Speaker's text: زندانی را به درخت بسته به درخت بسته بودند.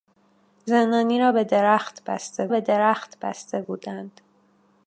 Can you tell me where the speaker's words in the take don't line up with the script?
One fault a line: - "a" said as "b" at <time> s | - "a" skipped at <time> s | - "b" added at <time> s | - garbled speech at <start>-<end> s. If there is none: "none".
none